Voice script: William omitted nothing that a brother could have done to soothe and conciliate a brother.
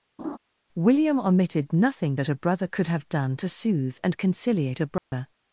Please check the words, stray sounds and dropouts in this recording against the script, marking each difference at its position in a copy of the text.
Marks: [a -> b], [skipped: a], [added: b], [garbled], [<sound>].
[laugh] William omitted nothing that a brother could have done to soothe and conciliate a brother. [dropout]